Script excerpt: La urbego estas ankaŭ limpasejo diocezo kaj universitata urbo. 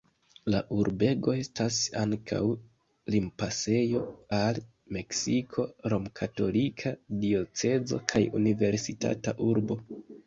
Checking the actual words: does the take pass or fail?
fail